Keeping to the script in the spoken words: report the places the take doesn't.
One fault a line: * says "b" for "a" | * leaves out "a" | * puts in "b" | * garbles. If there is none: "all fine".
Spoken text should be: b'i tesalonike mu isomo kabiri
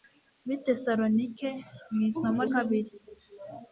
all fine